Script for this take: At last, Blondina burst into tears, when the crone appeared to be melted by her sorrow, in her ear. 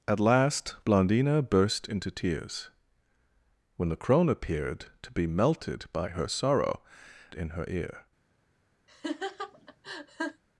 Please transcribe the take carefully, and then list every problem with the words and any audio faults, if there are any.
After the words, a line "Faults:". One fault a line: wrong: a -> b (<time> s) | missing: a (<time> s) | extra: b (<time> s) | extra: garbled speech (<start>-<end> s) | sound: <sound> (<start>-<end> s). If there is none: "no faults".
At last, Blondina burst into tears, when the crone appeared to be melted by her sorrow, in her ear.
Faults:
sound: laugh (8.9-10.4 s)